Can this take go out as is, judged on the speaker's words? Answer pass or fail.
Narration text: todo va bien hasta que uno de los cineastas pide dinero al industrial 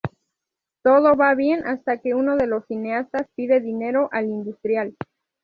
pass